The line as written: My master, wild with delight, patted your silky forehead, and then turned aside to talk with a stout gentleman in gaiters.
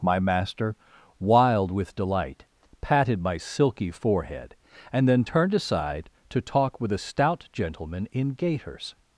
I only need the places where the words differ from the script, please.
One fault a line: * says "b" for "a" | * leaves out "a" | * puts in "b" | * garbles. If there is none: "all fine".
* says "my" for "your"